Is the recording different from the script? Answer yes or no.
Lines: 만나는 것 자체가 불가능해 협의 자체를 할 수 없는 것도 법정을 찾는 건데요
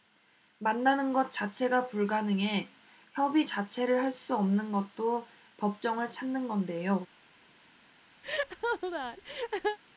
no